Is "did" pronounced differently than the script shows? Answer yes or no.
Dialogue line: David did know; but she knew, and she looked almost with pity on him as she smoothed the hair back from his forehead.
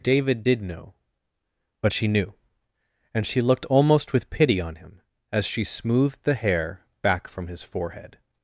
no